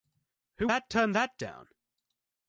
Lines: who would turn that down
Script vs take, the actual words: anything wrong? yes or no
yes